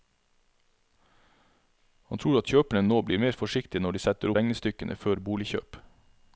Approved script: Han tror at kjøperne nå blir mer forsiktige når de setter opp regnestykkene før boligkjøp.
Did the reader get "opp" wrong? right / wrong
wrong